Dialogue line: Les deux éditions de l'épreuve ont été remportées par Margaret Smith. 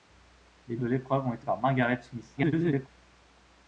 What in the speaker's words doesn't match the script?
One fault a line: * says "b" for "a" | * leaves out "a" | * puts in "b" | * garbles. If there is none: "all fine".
* leaves out "deux éditions"
* leaves out "remportées"
* garbles